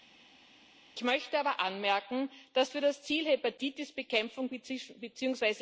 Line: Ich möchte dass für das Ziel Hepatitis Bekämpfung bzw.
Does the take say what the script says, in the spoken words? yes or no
no